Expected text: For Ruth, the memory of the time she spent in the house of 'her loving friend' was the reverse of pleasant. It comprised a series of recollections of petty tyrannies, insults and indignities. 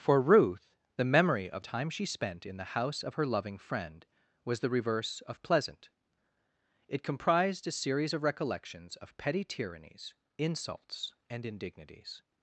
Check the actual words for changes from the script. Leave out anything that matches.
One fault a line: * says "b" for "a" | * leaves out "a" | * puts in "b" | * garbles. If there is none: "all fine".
* leaves out "the"